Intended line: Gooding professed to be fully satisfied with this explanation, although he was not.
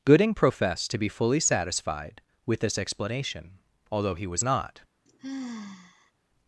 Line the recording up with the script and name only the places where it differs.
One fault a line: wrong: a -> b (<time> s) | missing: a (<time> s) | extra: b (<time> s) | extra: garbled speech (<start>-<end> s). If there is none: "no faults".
no faults